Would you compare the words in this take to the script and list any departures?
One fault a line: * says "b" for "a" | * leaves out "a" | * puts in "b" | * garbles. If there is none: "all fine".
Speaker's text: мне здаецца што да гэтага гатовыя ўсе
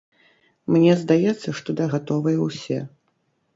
* leaves out "гэтага"